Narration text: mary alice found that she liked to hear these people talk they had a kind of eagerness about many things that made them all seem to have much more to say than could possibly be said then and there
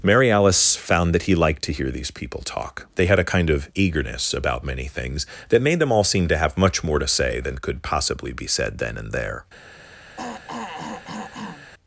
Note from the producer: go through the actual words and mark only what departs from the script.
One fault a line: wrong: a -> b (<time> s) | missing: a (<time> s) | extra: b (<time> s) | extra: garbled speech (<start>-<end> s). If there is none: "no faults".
wrong: she -> he (1.2 s)